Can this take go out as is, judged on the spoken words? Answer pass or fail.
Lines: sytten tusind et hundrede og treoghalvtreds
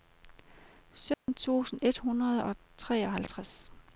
pass